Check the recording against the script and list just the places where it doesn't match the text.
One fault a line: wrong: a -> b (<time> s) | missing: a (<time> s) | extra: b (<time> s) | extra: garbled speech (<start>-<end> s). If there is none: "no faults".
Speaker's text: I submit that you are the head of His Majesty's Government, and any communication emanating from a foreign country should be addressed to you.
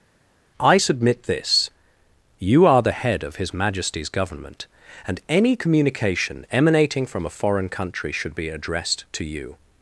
wrong: that -> this (1.2 s)